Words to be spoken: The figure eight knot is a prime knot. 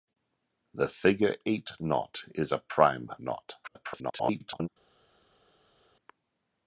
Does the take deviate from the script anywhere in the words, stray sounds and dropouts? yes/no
yes